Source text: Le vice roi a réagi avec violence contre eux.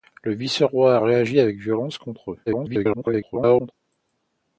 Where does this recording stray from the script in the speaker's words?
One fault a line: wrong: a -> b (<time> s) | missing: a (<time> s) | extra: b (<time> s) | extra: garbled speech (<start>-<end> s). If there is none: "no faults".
extra: garbled speech (2.5-3.7 s)